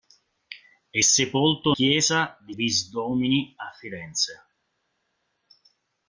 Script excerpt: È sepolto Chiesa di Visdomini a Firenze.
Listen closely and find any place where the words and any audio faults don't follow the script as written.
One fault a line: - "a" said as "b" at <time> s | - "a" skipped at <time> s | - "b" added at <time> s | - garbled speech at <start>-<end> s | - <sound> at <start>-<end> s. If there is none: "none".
none